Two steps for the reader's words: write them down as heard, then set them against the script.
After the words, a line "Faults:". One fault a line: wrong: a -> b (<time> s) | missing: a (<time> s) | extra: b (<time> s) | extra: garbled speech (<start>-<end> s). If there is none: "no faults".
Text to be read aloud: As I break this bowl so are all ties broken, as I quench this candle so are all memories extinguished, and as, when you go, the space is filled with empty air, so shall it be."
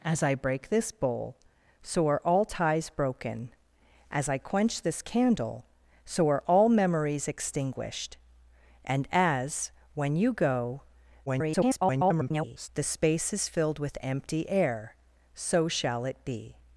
As I break this bowl so are all ties broken, as I quench this candle so are all memories extinguished, and as, when you go, [garbled] the space is filled with empty air, so shall it be."
Faults:
extra: garbled speech (11.3-12.7 s)